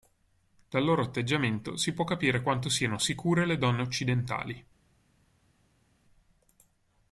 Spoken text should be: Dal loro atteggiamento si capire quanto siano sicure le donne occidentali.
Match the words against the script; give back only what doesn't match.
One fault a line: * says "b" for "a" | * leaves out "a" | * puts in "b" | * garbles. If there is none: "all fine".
* puts in "può"